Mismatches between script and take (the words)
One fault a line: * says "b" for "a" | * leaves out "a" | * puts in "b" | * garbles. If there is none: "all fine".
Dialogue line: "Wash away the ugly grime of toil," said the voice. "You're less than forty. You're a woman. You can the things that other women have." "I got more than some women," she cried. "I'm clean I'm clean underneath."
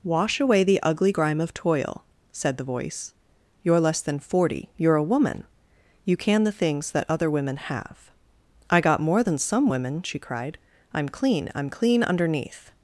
all fine